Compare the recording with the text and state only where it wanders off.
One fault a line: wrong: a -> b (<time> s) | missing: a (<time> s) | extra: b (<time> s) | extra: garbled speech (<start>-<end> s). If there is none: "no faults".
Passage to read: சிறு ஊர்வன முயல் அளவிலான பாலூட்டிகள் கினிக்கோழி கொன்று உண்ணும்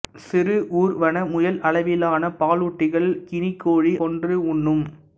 no faults